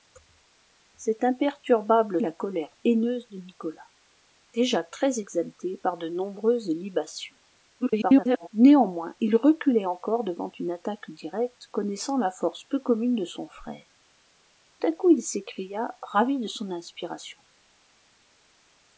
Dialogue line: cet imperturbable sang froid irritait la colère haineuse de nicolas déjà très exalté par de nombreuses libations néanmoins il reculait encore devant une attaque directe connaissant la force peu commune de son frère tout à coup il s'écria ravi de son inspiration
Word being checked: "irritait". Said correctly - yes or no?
no